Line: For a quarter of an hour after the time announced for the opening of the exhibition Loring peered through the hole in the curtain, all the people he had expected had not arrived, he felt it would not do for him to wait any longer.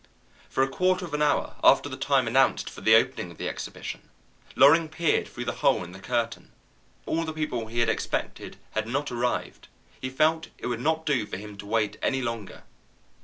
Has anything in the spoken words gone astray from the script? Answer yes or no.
no